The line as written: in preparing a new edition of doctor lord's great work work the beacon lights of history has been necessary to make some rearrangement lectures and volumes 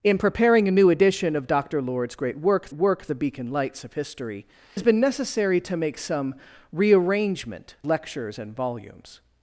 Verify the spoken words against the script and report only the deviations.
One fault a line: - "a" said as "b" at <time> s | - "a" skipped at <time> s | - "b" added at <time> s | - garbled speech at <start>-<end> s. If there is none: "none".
none